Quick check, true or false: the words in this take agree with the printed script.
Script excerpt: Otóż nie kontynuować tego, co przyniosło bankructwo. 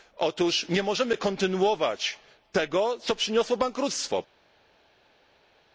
false